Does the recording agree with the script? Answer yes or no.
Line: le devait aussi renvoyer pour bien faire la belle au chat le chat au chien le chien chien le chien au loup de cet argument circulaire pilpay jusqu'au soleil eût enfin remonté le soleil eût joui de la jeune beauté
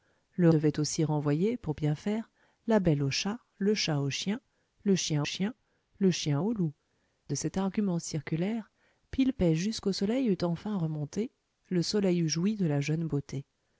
yes